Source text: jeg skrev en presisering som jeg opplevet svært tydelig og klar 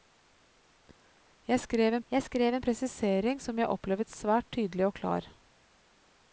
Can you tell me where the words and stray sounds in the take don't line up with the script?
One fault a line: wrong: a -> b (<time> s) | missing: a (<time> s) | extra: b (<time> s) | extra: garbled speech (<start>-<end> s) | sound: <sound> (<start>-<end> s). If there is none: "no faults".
extra: jeg skrev en (2.1 s)